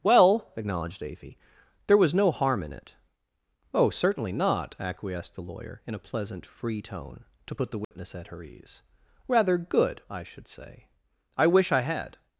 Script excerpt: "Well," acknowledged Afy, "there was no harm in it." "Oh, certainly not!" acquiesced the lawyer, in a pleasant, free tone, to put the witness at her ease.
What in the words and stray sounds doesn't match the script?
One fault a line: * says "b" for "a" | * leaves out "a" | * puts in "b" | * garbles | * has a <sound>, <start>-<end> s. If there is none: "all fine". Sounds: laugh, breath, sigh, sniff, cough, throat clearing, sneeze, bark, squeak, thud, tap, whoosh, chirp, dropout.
* has a dropout, 7.8-7.9 s
* puts in "Rather good I should say I wish I had"